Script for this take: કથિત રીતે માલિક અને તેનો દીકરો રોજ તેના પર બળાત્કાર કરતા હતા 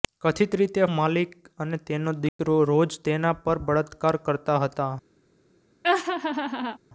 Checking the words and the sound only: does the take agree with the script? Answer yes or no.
no